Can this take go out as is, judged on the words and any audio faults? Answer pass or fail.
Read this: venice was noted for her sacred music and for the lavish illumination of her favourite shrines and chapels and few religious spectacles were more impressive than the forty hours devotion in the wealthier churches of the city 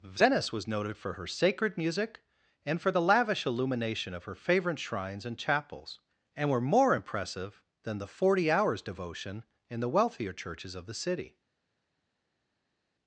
fail